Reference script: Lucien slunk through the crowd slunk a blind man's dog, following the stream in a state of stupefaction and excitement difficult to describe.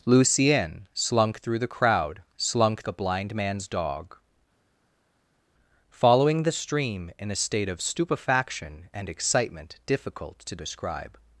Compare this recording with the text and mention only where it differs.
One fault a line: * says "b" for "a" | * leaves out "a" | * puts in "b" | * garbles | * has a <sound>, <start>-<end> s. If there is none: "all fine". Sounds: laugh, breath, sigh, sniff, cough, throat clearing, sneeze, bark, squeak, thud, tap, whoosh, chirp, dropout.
all fine